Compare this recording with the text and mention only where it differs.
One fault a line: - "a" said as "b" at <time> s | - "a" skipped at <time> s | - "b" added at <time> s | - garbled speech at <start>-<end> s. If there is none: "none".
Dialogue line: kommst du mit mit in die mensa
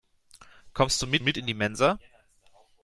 none